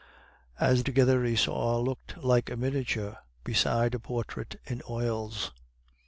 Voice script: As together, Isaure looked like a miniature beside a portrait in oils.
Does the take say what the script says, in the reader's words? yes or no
yes